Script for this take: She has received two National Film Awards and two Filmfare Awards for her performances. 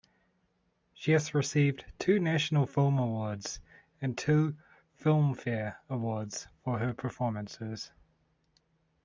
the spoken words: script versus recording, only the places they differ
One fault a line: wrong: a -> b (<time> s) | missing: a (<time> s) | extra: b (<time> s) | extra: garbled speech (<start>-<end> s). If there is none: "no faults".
no faults